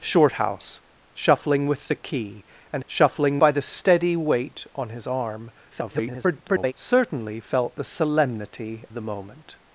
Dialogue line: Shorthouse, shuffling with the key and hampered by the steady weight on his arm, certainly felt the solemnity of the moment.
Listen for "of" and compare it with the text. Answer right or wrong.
wrong